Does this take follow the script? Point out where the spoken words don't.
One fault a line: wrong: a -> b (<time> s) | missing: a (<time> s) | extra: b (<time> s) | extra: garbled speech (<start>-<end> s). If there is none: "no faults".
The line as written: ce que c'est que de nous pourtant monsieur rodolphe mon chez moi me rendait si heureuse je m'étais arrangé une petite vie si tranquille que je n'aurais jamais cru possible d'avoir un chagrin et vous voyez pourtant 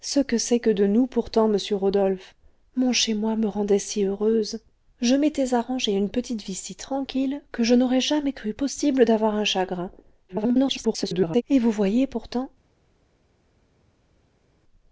extra: garbled speech (10.3-11.4 s)